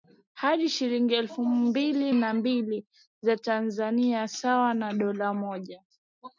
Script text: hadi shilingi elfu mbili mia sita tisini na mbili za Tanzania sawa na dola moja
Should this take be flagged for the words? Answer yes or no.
yes